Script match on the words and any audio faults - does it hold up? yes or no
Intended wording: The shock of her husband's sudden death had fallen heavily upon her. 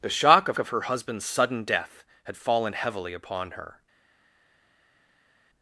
no